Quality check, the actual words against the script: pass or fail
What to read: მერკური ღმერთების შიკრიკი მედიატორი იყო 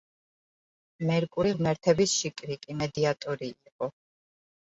pass